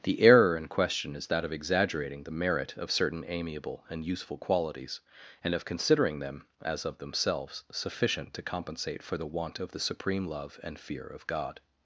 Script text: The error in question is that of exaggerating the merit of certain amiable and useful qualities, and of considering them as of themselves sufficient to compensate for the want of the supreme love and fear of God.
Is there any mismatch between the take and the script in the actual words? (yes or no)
no